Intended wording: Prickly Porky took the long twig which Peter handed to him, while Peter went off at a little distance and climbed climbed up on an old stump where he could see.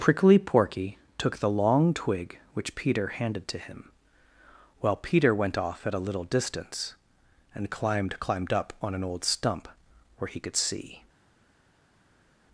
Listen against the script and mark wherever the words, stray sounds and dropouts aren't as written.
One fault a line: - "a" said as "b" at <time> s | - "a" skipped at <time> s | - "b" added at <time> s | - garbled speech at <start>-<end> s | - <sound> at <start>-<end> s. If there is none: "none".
none